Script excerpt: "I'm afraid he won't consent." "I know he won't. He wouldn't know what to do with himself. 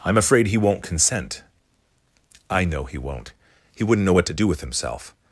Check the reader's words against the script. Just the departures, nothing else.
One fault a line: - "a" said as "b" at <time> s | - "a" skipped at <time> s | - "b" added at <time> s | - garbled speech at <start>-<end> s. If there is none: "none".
none